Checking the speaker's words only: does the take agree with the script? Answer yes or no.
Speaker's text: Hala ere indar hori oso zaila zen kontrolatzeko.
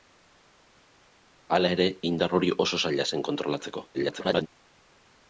no